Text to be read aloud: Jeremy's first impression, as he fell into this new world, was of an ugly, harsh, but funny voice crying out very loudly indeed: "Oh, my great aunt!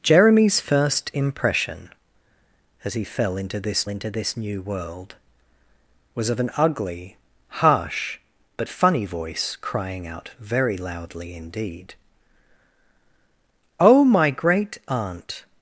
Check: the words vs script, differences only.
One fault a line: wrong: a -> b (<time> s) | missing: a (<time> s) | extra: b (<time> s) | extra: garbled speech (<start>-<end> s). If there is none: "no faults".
extra: into this (3.9 s)